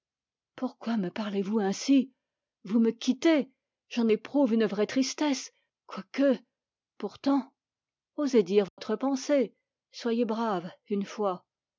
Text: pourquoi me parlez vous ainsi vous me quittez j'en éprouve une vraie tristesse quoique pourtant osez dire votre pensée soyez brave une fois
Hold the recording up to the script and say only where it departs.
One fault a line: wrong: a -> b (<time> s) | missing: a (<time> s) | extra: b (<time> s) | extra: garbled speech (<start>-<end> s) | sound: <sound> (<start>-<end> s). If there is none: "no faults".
sound: dropout (8.7-8.8 s)